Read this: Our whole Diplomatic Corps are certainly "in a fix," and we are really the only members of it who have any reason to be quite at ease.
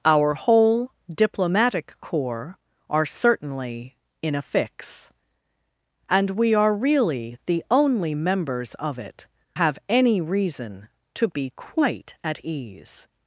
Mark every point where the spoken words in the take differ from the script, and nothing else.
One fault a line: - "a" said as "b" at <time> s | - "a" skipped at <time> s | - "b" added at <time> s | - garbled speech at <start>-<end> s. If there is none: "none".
- "who" skipped at 9.3 s